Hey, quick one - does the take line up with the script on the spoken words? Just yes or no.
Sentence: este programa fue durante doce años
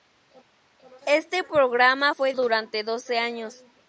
yes